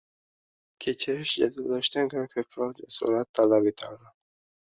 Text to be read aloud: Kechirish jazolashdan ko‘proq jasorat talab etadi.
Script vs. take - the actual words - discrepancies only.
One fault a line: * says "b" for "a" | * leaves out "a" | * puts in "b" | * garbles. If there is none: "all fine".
* puts in "ko‘ra"